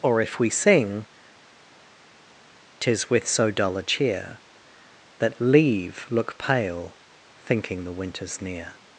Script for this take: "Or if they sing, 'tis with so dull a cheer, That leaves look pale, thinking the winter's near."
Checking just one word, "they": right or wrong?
wrong